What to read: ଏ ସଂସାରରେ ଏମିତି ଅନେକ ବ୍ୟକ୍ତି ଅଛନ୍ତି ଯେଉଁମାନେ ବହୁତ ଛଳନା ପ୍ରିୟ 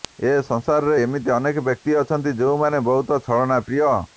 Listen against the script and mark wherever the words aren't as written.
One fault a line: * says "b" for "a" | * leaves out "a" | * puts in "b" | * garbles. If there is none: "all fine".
all fine